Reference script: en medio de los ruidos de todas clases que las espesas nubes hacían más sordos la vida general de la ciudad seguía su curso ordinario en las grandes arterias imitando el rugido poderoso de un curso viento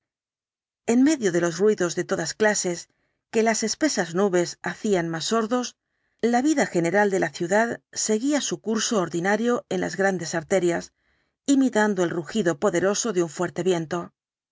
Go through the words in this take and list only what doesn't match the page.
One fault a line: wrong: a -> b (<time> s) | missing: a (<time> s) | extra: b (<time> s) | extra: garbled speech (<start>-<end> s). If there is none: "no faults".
wrong: curso -> fuerte (13.3 s)